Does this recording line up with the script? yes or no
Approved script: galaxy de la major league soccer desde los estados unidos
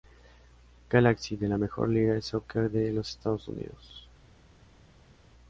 no